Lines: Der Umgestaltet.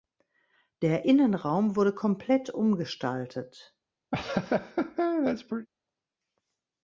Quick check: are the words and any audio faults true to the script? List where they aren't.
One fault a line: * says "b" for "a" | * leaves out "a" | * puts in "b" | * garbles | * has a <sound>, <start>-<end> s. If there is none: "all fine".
* puts in "Innenraum wurde komplett"
* has a laugh, 4.1-5.7 s